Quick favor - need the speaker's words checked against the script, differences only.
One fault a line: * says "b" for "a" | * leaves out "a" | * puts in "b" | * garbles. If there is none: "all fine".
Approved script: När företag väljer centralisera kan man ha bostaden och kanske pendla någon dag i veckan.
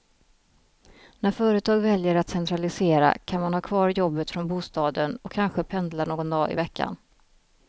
* puts in "att"
* puts in "kvar jobbet från"